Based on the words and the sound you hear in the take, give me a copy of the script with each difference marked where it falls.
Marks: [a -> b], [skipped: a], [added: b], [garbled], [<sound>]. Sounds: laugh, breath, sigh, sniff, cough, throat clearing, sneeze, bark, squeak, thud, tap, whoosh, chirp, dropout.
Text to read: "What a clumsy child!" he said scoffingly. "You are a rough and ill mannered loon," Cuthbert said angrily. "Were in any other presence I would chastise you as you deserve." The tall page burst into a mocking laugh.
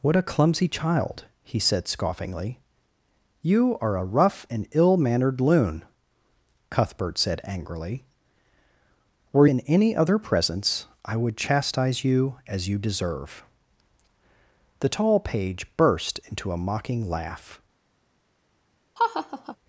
"What a clumsy child!" he said scoffingly. "You are a rough and ill mannered loon," Cuthbert said angrily. "Were in any other presence I would chastise you as you deserve." The tall page burst into a mocking laugh. [laugh]